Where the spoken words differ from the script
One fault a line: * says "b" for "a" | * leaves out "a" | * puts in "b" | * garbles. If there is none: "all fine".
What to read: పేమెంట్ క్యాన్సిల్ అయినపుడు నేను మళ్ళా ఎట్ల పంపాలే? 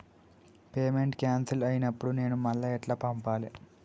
all fine